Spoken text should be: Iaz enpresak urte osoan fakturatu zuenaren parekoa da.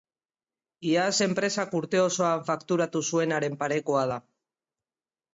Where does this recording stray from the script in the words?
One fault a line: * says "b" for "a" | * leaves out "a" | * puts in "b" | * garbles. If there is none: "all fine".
all fine